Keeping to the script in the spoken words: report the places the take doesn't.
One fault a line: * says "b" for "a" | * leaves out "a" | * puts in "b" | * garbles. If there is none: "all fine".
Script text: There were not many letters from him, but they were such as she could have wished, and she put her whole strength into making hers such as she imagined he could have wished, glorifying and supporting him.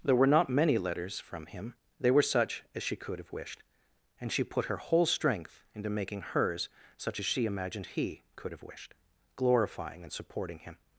* leaves out "but"